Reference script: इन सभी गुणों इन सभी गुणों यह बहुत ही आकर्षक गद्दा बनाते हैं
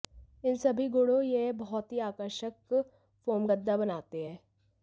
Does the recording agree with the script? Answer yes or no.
no